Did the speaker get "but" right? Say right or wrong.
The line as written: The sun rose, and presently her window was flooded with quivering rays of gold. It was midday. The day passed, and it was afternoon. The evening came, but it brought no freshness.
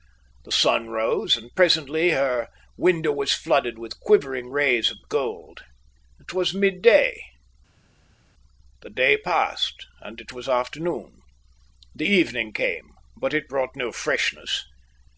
right